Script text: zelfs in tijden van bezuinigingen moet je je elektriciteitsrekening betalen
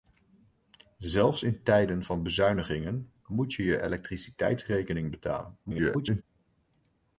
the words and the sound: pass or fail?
fail